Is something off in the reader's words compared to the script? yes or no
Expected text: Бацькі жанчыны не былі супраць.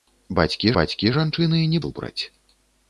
yes